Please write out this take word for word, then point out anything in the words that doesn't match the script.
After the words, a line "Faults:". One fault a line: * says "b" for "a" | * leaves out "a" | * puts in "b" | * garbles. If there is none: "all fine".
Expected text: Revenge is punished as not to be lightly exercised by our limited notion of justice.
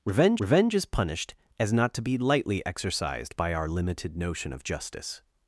Revenge revenge is punished as not to be lightly exercised by our limited notion of justice.
Faults:
* puts in "revenge"